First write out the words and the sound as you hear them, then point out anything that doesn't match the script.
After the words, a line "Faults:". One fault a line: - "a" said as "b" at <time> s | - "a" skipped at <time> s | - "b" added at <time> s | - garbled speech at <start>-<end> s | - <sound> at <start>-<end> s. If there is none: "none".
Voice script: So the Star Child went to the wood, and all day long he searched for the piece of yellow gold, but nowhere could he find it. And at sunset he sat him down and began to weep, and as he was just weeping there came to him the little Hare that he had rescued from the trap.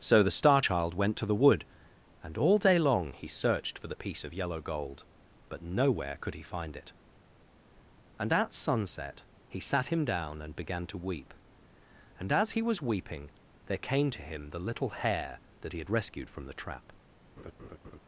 So the Star Child went to the wood, and all day long he searched for the piece of yellow gold, but nowhere could he find it. And at sunset he sat him down and began to weep, and as he was weeping there came to him the little Hare that he had rescued from the trap.
Faults:
- "just" skipped at 12.8 s
- laugh at 17.4-18.0 s